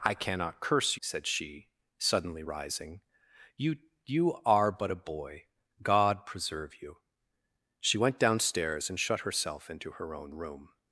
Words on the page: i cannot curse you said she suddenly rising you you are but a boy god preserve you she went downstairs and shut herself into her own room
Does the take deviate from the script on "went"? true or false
false